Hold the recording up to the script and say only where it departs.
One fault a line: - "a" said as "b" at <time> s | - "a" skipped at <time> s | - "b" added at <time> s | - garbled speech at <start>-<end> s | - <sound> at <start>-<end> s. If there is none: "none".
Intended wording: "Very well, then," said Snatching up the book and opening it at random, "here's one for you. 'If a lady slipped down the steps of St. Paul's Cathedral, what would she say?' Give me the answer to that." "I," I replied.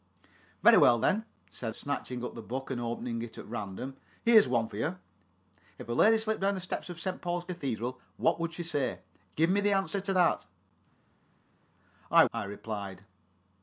none